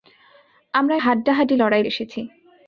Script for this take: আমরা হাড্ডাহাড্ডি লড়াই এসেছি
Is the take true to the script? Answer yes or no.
yes